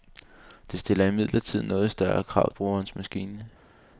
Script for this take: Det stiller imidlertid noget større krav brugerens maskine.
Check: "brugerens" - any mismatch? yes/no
no